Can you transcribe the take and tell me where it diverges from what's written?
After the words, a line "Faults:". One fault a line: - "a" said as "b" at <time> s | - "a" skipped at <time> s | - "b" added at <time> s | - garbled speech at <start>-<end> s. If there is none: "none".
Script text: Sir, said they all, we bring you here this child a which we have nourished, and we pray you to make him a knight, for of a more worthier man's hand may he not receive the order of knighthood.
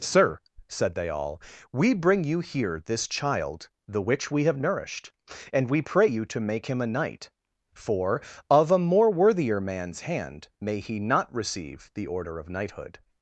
Sir, said they all, we bring you here this child the which we have nourished, and we pray you to make him a knight, for of a more worthier man's hand may he not receive the order of knighthood.
Faults:
- "a" said as "the" at 3.9 s